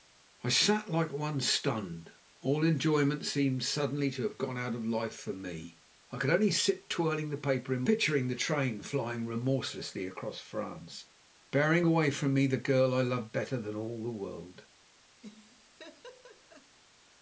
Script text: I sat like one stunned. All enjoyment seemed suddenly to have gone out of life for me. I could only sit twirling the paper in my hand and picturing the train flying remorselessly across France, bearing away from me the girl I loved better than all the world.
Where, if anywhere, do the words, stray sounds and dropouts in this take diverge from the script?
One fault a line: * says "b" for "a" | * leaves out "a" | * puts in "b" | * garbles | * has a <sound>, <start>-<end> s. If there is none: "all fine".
* leaves out "my hand and"
* has a laugh, 15.2-16.8 s